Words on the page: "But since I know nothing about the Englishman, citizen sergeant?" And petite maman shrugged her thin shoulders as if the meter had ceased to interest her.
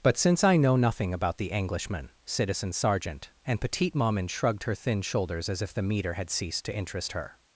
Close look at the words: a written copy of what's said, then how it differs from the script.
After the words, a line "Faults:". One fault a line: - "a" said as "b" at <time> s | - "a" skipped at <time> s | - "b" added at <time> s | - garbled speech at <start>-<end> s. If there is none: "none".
"But since I know nothing about the Englishman, citizen sergeant?" And petite maman shrugged her thin shoulders as if the meter had ceased to interest her.
Faults:
none